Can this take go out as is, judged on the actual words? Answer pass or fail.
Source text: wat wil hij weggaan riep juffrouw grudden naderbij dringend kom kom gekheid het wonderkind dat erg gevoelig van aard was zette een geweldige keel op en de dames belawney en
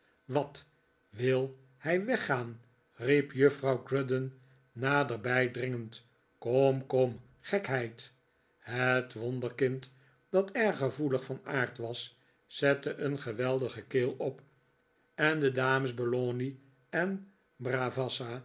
pass